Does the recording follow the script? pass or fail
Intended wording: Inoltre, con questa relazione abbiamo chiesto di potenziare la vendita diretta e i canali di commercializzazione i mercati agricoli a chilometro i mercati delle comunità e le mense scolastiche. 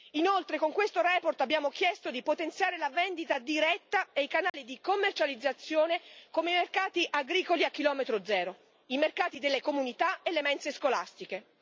fail